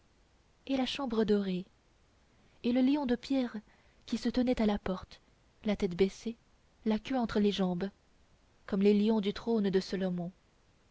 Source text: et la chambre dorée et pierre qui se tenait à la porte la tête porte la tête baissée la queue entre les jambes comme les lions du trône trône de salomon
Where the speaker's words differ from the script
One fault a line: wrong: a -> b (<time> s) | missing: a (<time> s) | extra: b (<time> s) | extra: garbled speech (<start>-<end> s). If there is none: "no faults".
extra: le lion de (2.7 s)
missing: porte la tête (6.0 s)
missing: trône (9.7 s)